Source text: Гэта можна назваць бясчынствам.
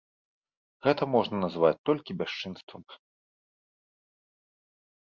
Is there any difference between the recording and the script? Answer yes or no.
yes